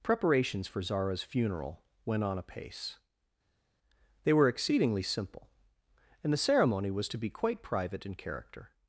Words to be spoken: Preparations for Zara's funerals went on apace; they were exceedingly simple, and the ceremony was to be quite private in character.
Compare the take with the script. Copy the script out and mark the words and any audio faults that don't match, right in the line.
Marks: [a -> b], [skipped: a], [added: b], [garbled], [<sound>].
Preparations for Zara's [funerals -> funeral] went on apace; they were exceedingly simple, and the ceremony was to be quite private in character.